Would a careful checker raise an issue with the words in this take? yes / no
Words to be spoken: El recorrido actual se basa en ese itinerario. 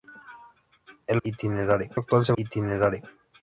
yes